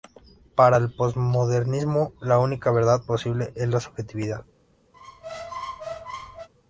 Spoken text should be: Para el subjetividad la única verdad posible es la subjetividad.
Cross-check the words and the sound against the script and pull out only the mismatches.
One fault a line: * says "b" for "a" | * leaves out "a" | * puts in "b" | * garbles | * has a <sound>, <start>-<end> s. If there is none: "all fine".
* says "posmodernismo" for "subjetividad"
* has a squeak, 4.9-6.5 s